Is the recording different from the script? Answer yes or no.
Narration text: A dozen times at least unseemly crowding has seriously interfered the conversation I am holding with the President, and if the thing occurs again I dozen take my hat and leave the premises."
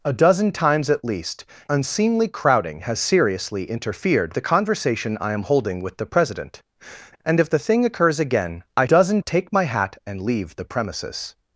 no